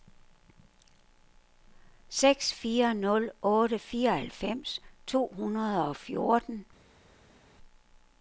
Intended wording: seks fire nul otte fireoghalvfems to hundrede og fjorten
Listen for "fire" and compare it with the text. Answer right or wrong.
right